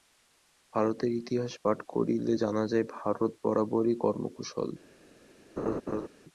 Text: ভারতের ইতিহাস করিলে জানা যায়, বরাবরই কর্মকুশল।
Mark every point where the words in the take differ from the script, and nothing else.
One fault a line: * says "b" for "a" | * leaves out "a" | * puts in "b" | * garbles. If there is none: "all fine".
* puts in "পাঠ"
* puts in "ভারত"